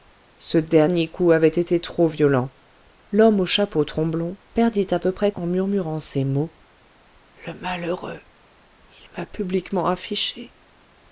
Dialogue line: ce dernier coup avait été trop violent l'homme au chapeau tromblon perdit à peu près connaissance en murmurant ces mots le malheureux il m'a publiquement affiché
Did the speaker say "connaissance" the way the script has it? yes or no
no